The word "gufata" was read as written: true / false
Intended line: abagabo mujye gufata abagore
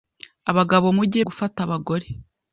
true